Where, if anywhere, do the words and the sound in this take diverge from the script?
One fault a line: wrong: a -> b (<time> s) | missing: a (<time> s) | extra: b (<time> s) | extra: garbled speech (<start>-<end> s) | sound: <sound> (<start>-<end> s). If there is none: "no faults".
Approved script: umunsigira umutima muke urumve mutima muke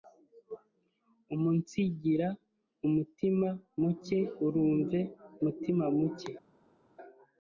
no faults